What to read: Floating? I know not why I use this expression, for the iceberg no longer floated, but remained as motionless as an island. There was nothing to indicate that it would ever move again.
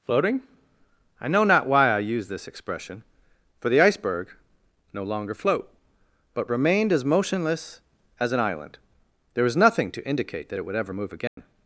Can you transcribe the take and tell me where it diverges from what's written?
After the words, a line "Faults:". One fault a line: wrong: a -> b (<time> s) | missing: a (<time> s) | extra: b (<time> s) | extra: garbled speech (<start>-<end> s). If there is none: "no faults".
Floating? I know not why I use this expression, for the iceberg no longer float, but remained as motionless as an island. There was nothing to indicate that it would ever move again.
Faults:
wrong: floated -> float (5.3 s)